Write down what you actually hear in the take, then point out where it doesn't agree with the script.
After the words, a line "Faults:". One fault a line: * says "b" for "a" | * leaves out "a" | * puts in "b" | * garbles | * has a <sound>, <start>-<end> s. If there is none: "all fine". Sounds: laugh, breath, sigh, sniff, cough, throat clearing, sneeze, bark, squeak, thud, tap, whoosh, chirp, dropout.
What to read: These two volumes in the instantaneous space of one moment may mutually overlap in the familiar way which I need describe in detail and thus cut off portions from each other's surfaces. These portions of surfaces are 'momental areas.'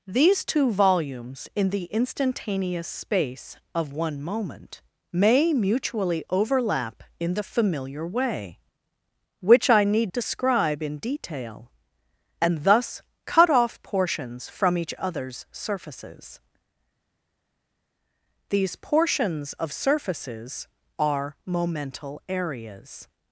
These two volumes in the instantaneous space of one moment may mutually overlap in the familiar way which I need describe in detail and thus cut off portions from each other's surfaces. These portions of surfaces are 'momental areas.'
Faults:
all fine